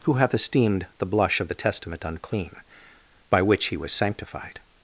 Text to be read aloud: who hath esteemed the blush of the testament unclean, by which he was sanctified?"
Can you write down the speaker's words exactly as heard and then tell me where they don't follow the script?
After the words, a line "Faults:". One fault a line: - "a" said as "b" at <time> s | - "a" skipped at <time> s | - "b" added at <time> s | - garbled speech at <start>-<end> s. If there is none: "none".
who hath esteemed the blush of the testament unclean, by which he was sanctified?"
Faults:
none